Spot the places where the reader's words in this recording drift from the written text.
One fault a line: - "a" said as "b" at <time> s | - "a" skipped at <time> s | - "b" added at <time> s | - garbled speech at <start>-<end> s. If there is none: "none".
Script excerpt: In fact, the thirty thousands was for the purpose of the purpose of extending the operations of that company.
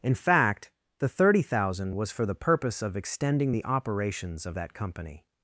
- "thousands" said as "thousand" at 1.4 s
- "the purpose of" skipped at 3.0 s